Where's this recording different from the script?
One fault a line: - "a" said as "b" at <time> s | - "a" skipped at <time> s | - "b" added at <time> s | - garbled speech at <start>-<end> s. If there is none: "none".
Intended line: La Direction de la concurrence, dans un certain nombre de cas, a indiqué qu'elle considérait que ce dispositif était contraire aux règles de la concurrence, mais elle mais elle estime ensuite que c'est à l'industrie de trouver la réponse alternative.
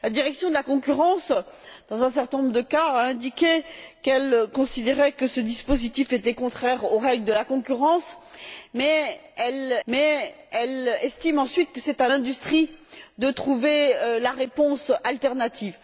none